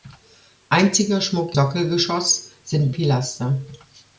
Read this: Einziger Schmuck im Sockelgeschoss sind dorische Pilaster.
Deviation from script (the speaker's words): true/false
true